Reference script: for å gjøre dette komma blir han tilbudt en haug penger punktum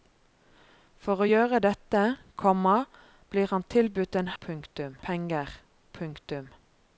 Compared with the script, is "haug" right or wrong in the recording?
wrong